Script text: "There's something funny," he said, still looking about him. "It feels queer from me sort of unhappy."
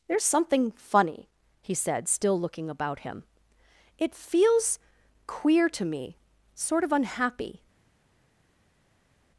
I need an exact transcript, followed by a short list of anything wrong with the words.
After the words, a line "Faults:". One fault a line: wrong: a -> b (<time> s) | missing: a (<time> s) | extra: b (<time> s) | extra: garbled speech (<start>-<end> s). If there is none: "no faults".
"There's something funny," he said, still looking about him. "It feels queer to me sort of unhappy."
Faults:
wrong: from -> to (5.7 s)